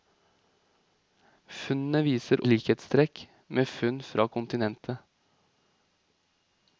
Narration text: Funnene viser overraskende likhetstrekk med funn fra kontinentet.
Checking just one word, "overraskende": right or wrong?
wrong